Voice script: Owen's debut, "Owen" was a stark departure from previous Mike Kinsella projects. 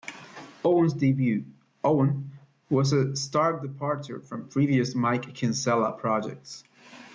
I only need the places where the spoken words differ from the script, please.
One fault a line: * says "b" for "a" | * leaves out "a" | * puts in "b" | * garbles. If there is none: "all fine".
all fine